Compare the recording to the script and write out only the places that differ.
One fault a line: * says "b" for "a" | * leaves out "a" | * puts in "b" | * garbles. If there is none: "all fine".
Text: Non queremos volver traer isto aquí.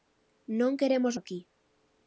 * leaves out "volver traer isto"